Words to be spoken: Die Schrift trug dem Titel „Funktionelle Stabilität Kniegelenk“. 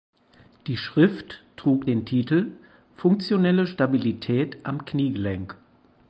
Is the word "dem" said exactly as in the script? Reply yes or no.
no